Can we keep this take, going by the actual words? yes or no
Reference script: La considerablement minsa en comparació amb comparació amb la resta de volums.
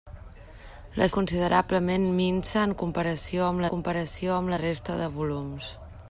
yes